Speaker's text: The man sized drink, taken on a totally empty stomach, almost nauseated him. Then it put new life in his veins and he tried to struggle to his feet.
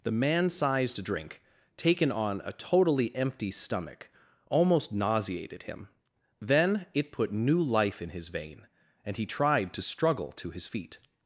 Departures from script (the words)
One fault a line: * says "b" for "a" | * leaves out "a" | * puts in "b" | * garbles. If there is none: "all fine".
* says "vein" for "veins"